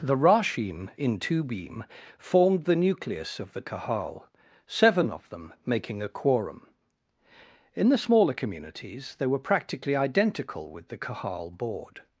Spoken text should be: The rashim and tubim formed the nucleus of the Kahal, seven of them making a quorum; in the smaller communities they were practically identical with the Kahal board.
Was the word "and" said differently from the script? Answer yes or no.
yes